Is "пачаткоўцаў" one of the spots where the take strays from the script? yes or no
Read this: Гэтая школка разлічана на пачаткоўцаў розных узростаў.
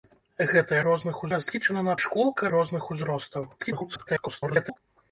yes